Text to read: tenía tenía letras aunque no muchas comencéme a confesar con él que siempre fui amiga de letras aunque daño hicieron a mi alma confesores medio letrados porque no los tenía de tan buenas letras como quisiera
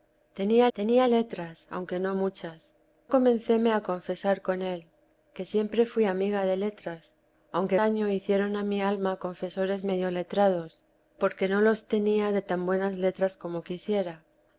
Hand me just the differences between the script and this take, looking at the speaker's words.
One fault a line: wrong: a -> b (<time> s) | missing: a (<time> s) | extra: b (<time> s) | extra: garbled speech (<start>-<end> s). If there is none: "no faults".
no faults